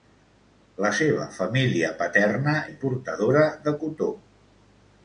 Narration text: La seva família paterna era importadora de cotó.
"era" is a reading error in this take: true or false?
true